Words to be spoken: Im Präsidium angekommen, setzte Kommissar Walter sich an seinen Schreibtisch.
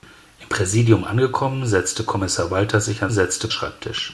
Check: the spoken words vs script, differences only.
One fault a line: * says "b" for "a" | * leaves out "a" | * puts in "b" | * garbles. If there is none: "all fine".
* says "setzte" for "seinen"